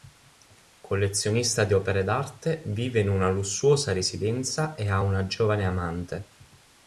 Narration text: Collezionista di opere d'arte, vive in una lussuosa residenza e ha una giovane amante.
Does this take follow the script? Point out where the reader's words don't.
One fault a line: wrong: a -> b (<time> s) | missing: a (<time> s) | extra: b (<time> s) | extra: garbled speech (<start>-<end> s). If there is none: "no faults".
no faults